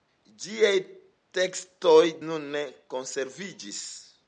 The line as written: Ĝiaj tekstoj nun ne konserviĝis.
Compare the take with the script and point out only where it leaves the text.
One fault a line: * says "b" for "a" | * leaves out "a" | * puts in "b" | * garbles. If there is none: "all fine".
all fine